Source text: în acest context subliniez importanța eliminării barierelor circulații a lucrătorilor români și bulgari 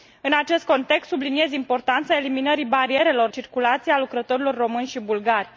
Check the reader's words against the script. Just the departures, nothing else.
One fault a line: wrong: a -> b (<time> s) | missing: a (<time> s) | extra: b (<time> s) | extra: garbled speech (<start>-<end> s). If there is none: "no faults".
no faults